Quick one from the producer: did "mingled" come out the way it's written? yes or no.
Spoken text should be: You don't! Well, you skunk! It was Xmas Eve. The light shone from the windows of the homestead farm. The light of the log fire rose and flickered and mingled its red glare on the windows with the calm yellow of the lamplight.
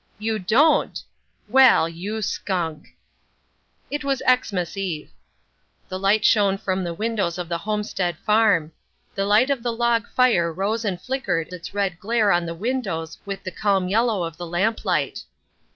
no